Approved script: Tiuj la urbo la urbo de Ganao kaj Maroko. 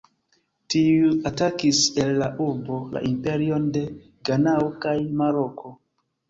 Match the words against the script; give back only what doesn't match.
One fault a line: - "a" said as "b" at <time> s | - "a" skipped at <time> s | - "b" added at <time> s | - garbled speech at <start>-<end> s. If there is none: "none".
- "atakis el" added at 1.3 s
- "urbo" said as "imperion" at 3.1 s